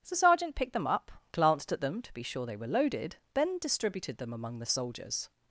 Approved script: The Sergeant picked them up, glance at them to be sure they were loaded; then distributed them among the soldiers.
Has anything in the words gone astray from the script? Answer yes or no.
yes